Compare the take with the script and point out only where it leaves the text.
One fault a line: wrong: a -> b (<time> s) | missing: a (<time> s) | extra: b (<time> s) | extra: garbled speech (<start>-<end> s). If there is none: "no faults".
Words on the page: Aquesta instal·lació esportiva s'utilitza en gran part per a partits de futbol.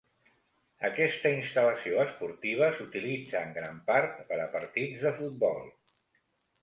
no faults